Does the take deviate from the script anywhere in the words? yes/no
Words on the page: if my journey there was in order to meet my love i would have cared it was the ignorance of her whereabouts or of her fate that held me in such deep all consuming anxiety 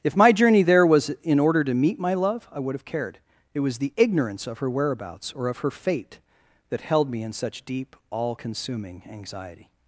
no